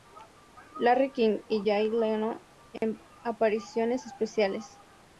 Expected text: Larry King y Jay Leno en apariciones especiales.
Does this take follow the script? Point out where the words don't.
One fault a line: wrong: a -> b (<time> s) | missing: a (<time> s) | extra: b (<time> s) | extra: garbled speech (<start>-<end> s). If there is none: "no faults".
no faults